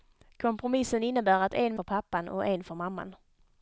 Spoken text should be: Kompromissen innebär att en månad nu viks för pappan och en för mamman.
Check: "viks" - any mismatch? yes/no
yes